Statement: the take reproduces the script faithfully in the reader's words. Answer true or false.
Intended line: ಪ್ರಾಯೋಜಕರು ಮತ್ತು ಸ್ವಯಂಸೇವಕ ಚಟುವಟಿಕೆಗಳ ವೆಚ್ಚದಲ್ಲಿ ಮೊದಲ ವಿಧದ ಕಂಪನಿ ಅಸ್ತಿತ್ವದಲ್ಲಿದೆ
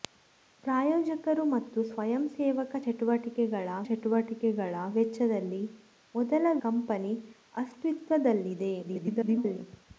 false